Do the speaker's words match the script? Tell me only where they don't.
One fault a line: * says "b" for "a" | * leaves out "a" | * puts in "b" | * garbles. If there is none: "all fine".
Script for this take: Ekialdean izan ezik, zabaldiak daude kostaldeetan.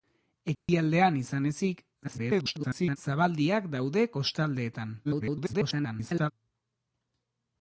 * garbles
* garbles